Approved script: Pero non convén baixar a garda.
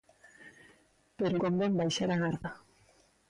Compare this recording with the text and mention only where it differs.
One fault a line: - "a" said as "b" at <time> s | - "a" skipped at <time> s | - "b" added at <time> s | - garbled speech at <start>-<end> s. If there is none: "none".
- "non" skipped at 1.4 s